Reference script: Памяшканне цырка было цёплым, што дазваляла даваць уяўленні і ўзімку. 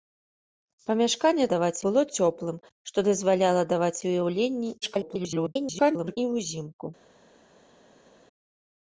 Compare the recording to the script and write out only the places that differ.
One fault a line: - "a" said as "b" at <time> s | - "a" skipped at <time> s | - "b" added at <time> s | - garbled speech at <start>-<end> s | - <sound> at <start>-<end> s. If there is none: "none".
- "цырка" said as "даваць" at 1.5 s
- garbled speech at 4.8-6.2 s